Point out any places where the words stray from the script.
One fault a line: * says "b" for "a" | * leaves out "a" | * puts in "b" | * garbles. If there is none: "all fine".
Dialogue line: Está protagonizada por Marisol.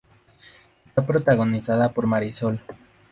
all fine